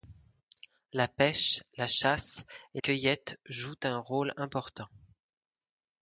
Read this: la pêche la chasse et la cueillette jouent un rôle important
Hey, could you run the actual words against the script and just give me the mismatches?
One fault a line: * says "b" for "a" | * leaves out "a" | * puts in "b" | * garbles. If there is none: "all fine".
* leaves out "la"